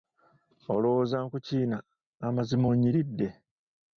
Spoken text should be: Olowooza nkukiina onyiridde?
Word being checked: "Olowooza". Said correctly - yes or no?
yes